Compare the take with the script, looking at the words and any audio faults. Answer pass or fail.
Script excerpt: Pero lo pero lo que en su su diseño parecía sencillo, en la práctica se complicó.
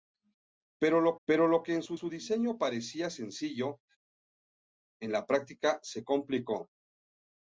pass